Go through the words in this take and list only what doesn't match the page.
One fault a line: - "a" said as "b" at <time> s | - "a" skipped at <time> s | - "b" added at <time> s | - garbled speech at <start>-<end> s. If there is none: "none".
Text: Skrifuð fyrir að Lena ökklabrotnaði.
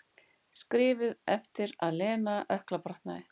- "fyrir" said as "eftir" at 1.4 s